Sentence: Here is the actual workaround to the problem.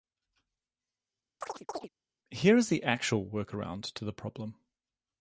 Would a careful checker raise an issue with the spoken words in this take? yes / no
no